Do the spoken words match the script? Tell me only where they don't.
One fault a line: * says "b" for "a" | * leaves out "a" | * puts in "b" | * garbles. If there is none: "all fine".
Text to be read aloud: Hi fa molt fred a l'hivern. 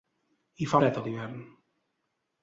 * leaves out "molt"